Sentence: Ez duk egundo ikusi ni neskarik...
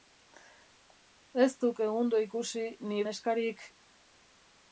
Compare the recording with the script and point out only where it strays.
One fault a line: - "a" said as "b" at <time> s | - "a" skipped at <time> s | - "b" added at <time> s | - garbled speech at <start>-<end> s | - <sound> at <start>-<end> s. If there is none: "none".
none